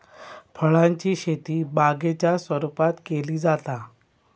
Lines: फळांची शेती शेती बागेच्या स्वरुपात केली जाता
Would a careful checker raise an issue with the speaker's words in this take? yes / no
yes